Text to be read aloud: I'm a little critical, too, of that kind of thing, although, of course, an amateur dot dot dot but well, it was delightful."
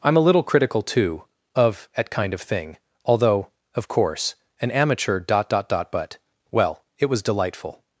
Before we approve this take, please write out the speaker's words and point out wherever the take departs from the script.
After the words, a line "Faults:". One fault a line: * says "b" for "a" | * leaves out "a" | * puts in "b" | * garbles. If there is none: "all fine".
I'm a little critical, too, of at kind of thing, although, of course, an amateur dot dot dot but well, it was delightful."
Faults:
* says "at" for "that"